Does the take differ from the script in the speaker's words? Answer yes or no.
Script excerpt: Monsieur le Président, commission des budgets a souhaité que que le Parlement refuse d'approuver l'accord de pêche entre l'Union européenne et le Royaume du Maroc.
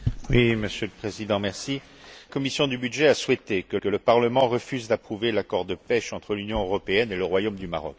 no